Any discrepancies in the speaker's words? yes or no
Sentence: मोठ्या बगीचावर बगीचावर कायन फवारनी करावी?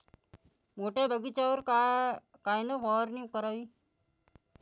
yes